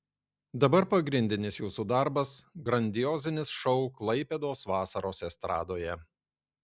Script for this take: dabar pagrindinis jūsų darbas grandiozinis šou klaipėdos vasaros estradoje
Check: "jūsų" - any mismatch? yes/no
no